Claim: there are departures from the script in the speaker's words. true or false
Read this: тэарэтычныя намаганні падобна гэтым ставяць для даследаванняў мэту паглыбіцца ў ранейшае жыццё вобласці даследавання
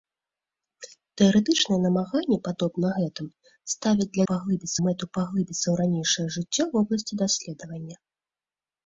true